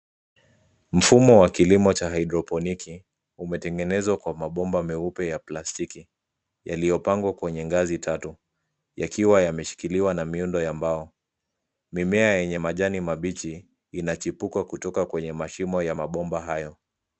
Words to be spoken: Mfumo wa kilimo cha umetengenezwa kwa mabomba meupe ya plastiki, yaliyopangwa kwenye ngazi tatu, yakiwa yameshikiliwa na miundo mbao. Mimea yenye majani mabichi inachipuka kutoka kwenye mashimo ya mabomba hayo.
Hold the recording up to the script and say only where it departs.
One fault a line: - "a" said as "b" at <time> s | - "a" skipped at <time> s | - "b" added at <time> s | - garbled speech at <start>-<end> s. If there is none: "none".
- "haidroponiki" added at 2.1 s
- "ya" added at 10.6 s